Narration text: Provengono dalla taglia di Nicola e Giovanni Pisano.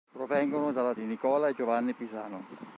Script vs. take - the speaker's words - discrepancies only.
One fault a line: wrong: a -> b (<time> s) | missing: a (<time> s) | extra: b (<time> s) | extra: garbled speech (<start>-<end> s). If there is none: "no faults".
missing: taglia (0.9 s)